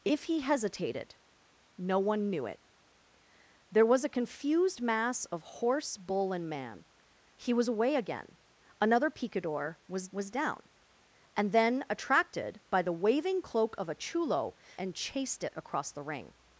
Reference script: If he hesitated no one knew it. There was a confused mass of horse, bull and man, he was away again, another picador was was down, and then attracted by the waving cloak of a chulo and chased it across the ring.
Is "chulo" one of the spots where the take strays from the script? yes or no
no